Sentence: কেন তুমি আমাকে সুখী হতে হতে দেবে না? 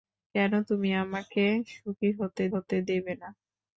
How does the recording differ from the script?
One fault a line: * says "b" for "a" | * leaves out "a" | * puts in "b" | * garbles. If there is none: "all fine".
all fine